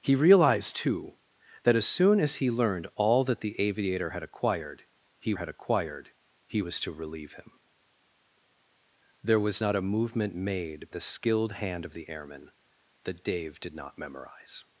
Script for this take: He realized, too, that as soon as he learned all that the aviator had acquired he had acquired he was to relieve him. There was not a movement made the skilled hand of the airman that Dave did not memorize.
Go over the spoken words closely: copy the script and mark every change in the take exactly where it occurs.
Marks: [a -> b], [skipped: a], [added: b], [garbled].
He realized, too, that as soon as he learned all that the aviator had acquired he had acquired he was to relieve him. There was not a movement made the skilled hand of the airman that Dave did not memorize.